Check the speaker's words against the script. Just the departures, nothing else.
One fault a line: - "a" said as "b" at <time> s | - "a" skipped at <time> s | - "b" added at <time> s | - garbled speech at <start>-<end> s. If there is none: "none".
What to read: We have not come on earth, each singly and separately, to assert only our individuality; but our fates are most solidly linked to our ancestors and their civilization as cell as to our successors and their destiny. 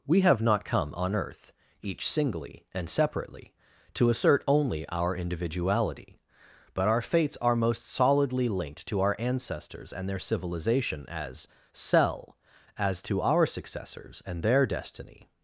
none